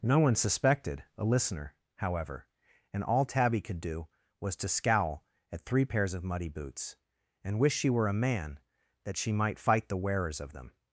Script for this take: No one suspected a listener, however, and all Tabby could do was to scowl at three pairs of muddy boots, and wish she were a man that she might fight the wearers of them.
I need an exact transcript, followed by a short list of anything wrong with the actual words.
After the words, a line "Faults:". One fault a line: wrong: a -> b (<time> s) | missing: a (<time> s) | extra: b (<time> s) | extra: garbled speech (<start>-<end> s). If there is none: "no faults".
No one suspected a listener, however, and all Tabby could do was to scowl at three pairs of muddy boots, and wish she were a man that she might fight the wearers of them.
Faults:
no faults